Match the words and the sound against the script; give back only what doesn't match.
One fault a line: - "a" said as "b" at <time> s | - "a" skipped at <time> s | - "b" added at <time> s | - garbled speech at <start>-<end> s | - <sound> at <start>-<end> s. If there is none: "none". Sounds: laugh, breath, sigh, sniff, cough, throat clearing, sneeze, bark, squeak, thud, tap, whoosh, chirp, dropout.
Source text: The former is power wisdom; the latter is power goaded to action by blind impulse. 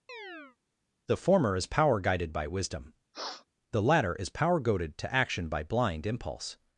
- chirp at 0.1-0.6 s
- "guided by" added at 2.0 s
- sniff at 3.1-3.5 s